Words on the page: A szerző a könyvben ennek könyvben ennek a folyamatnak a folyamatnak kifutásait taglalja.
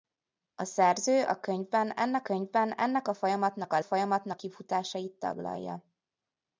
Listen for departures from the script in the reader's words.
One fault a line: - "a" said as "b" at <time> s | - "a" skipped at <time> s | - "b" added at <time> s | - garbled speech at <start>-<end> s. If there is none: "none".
none